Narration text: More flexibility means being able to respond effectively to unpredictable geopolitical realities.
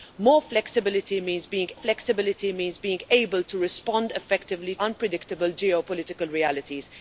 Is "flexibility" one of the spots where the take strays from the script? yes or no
no